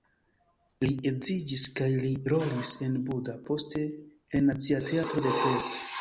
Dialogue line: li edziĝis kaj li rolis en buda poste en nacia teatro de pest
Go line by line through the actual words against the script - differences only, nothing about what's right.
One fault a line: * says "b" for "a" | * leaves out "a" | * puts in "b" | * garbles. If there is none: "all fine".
all fine